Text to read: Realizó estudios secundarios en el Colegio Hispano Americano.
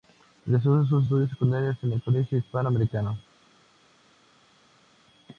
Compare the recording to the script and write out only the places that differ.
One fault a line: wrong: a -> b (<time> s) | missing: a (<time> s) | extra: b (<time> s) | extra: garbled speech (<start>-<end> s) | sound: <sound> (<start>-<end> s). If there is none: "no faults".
extra: sus (0.8 s)